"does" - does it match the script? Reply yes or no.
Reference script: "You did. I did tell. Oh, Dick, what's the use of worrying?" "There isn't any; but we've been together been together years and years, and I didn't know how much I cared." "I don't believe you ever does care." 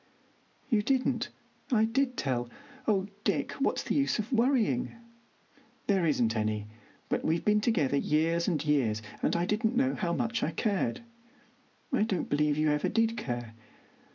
no